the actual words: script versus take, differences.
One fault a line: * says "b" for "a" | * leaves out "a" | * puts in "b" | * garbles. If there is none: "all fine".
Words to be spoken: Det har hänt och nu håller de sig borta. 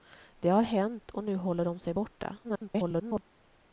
* garbles